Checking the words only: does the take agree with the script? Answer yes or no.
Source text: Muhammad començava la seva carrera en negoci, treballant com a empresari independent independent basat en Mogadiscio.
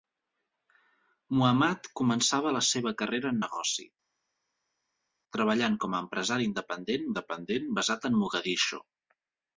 yes